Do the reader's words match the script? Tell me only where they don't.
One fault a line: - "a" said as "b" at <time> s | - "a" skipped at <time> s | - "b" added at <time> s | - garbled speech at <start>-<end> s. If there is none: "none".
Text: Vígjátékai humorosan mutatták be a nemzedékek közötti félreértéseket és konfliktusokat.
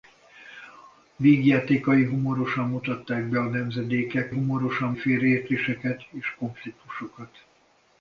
- "közötti" said as "humorosan" at 4.3 s